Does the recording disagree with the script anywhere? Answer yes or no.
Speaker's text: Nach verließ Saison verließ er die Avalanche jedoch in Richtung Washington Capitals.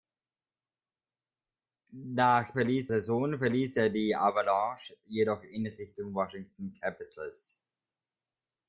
no